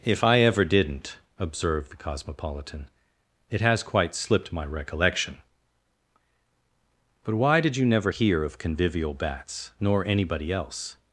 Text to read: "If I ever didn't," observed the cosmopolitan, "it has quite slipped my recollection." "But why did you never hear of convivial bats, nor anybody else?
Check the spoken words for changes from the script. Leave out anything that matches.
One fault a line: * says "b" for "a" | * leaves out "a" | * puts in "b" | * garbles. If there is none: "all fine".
all fine